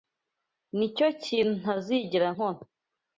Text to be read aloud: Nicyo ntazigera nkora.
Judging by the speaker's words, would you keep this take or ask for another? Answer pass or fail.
fail